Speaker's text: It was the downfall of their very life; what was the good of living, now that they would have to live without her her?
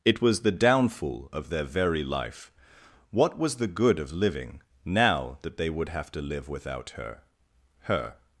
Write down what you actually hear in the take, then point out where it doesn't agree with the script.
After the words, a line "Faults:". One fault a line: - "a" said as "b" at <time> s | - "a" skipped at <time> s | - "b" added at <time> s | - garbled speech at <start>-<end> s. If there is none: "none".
It was the downfall of their very life; what was the good of living, now that they would have to live without her her?
Faults:
none